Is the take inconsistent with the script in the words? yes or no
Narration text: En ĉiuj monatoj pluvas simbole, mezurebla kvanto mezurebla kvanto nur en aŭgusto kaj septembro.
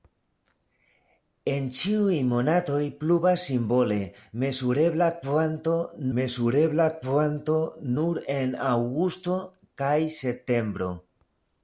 no